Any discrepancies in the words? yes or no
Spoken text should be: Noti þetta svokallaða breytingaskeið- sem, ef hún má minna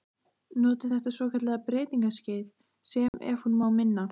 no